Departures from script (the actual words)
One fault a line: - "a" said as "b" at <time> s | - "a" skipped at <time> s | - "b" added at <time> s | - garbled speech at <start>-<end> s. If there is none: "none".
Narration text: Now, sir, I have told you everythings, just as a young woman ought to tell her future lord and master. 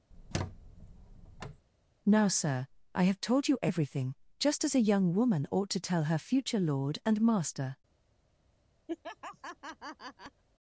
- "everythings" said as "everything" at 3.6 s